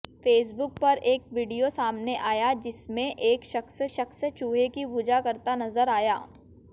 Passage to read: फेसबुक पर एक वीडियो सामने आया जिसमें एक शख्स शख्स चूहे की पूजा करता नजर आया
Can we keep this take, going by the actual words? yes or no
yes